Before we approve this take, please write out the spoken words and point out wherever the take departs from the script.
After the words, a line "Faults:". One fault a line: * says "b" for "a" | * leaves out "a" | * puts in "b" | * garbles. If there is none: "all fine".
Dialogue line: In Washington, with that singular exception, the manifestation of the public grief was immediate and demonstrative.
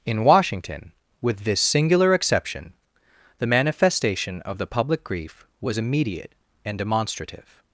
In Washington, with this singular exception, the manifestation of the public grief was immediate and demonstrative.
Faults:
* says "this" for "that"